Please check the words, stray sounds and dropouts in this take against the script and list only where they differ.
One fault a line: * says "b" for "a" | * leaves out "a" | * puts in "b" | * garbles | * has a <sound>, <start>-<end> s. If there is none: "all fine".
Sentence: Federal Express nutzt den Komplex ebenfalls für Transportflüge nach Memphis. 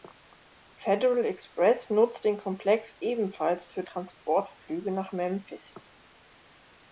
all fine